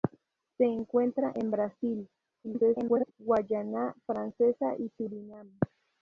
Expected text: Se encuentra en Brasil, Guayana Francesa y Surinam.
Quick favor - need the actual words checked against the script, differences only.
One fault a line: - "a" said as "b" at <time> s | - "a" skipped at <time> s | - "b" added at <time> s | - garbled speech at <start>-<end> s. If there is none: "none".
- garbled speech at 2.4-3.1 s